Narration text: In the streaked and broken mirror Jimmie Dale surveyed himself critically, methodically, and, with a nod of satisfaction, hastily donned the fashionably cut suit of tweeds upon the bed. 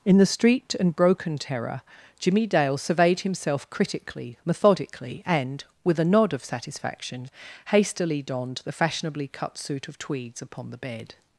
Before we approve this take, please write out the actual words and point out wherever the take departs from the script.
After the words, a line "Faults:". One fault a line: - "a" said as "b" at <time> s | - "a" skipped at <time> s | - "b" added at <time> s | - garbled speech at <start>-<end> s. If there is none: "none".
In the streaked and broken terror Jimmie Dale surveyed himself critically, methodically, and, with a nod of satisfaction, hastily donned the fashionably cut suit of tweeds upon the bed.
Faults:
- "mirror" said as "terror" at 1.4 s